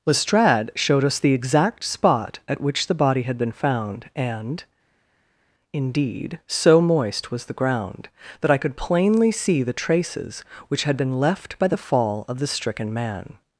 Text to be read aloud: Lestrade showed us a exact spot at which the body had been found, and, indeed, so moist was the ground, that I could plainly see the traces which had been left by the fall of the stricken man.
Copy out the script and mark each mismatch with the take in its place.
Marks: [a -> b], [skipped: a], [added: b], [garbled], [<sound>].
Lestrade showed us [a -> the] exact spot at which the body had been found, and, indeed, so moist was the ground, that I could plainly see the traces which had been left by the fall of the stricken man.